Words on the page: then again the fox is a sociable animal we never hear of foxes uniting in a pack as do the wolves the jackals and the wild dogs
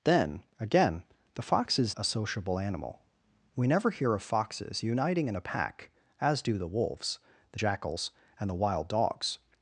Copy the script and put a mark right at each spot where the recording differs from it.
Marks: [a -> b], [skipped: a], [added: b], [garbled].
then again the fox is a sociable animal we never hear of foxes uniting in a pack as do the wolves the jackals and the wild dogs